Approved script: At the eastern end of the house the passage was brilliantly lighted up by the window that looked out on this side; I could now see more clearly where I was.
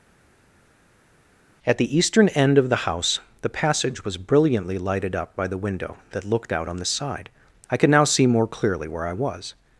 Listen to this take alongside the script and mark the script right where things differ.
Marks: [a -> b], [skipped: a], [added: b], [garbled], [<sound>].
At the eastern end of the house the passage was brilliantly lighted up by the window that looked out on [this -> the] side; I could now see more clearly where I was.